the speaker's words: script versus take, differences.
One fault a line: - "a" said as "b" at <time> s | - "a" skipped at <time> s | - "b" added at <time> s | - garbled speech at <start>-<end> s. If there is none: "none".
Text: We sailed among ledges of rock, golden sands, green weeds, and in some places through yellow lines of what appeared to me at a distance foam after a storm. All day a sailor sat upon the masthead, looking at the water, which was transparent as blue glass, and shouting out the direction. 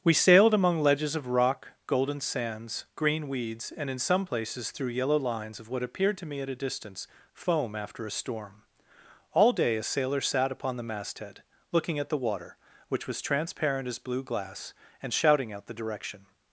none